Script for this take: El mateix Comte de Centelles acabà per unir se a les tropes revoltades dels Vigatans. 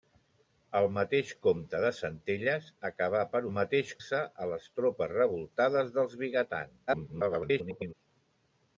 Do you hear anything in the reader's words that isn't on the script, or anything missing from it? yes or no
yes